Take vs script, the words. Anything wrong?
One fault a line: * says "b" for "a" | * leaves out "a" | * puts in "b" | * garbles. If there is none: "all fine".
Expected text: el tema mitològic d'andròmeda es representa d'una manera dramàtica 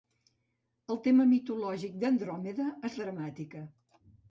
* leaves out "representa d'una manera"